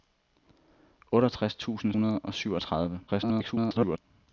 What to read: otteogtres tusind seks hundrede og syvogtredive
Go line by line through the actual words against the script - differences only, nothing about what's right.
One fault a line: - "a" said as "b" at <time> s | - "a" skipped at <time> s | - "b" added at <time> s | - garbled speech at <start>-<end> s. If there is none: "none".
- "seks" skipped at 1.9 s
- garbled speech at 3.1-4.0 s